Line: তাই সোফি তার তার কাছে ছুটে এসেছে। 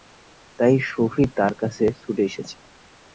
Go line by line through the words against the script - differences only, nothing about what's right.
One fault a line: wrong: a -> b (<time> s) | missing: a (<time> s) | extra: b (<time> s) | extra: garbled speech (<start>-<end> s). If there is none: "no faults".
missing: তার (1.5 s)